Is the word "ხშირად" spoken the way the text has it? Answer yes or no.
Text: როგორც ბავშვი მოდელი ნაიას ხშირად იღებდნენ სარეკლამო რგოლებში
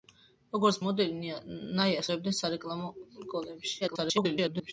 no